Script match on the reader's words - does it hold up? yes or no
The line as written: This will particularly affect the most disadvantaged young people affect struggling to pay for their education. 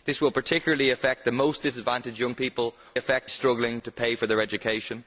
yes